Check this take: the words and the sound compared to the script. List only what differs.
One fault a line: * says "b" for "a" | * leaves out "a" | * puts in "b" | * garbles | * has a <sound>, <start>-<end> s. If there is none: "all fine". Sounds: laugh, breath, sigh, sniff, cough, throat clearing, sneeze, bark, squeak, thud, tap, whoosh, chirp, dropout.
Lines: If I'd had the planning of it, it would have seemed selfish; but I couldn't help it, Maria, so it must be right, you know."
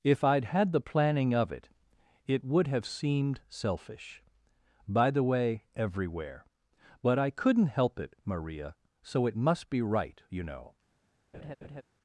* puts in "by the way everywhere"
* has a laugh, 11.3-11.8 s